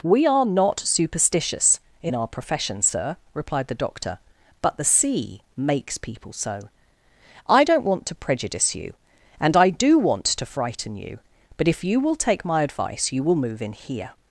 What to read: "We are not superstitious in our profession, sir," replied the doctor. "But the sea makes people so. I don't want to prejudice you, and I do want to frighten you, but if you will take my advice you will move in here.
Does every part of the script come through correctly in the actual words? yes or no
yes